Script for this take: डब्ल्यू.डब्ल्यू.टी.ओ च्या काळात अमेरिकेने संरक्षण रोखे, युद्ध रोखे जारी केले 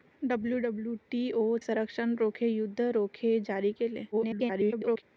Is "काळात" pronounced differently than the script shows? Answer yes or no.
yes